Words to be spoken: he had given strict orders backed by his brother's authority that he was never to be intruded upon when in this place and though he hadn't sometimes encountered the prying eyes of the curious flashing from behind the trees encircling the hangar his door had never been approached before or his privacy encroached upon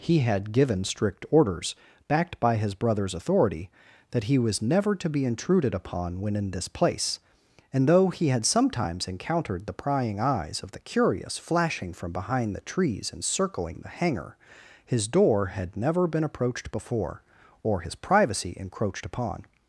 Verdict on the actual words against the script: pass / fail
fail